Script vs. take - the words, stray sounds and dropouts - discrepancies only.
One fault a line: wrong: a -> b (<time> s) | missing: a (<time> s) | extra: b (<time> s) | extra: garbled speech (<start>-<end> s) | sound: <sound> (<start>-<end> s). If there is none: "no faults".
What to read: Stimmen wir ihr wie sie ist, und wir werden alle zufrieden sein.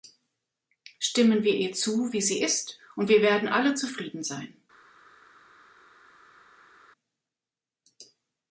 extra: zu (1.7 s)